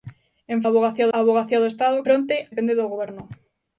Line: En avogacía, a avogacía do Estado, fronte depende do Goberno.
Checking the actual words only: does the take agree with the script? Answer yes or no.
yes